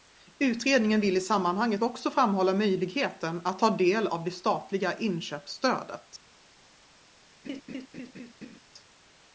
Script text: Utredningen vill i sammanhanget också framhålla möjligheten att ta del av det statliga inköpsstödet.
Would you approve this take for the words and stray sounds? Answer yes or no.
no